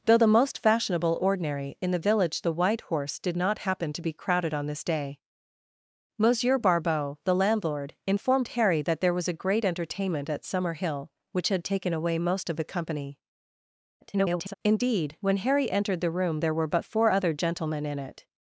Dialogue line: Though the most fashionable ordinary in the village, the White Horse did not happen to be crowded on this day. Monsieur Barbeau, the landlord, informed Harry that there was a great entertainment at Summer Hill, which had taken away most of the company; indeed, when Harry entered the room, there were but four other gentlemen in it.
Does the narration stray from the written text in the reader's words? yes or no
yes